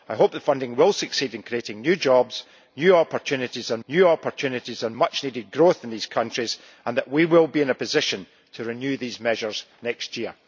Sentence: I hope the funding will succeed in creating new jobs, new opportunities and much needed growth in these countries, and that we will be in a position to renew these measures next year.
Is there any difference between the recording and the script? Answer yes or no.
yes